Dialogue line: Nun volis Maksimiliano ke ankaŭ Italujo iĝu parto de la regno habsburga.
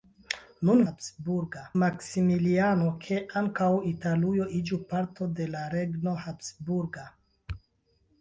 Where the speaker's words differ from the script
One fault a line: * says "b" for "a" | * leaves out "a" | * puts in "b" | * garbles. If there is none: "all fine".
* says "habsburga" for "volis"